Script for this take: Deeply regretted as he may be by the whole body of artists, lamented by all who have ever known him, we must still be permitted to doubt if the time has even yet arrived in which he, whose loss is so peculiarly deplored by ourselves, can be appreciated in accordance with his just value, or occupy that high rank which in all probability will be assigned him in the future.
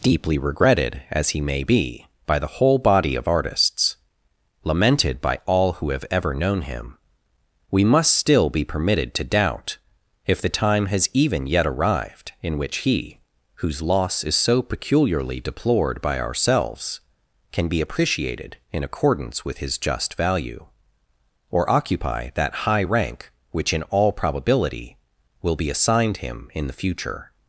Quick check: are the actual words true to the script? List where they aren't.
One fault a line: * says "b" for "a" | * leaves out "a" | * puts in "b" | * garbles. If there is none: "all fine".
all fine